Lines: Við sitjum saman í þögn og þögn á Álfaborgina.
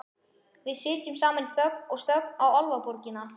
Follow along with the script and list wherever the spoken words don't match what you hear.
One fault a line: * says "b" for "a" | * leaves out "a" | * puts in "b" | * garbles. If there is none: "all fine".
all fine